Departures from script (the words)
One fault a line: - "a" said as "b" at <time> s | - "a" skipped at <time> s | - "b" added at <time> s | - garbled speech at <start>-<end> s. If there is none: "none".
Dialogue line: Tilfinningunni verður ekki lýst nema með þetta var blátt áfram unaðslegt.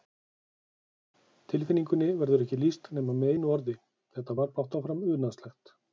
- "einu orði" added at 3.3 s